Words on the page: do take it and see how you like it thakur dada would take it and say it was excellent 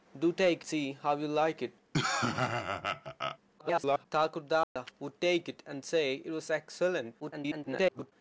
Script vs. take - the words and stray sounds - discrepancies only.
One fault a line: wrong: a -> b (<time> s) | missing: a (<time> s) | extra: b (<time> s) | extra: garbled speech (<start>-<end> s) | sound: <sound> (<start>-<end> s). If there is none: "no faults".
missing: it and (0.7 s)
sound: laugh (1.9-3.4 s)
extra: garbled speech (3.6-4.1 s)
sound: dropout (4.6-4.8 s)
extra: garbled speech (7.2-8.1 s)